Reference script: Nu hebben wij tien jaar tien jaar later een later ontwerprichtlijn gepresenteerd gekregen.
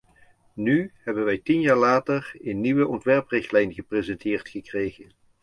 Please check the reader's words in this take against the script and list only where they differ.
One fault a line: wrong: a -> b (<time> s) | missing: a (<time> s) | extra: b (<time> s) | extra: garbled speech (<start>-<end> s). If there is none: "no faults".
missing: tien jaar (1.8 s)
wrong: later -> nieuwe (2.6 s)